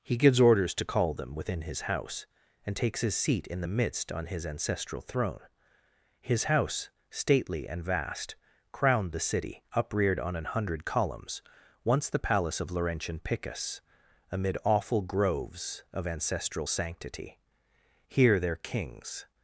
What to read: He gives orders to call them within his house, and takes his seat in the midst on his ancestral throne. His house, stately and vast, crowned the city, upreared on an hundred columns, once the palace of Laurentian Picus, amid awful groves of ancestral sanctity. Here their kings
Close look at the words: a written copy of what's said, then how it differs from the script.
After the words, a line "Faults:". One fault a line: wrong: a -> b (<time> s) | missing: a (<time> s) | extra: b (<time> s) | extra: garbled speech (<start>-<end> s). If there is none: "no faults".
He gives orders to call them within his house, and takes his seat in the midst on his ancestral throne. His house, stately and vast, crowned the city, upreared on an hundred columns, once the palace of Laurentian Picus, amid awful groves of ancestral sanctity. Here their kings
Faults:
no faults